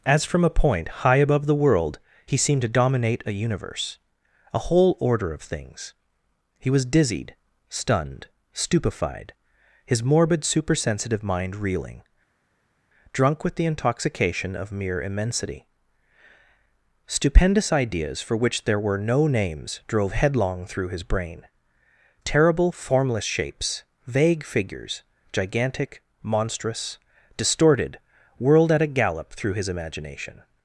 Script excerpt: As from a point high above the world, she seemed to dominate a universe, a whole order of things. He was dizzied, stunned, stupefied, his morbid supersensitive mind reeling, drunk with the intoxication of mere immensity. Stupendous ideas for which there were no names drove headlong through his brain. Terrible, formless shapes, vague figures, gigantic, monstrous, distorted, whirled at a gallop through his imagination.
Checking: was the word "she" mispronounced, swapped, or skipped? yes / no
yes